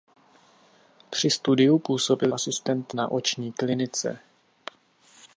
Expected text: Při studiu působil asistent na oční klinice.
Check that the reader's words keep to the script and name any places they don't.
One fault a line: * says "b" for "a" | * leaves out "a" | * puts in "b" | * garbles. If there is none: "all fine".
all fine